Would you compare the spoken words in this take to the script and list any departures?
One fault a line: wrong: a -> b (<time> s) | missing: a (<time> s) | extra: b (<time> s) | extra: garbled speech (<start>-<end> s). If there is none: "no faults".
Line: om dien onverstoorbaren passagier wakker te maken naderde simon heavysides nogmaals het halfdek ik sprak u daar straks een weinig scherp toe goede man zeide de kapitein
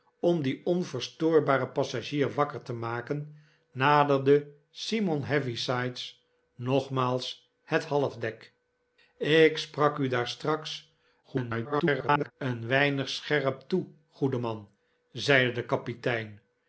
extra: garbled speech (11.2-12.3 s)